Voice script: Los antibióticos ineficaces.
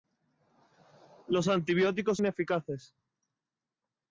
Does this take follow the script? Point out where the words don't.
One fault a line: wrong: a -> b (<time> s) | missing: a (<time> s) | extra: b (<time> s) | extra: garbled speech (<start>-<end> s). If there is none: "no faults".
no faults